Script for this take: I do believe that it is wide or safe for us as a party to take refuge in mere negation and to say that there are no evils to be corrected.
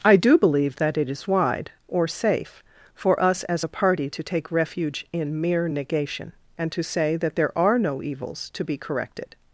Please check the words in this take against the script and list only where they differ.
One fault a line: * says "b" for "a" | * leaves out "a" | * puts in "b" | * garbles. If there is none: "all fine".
all fine